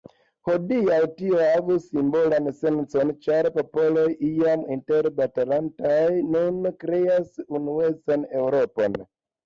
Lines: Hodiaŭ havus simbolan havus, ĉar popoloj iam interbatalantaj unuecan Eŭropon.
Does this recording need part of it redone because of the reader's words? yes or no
yes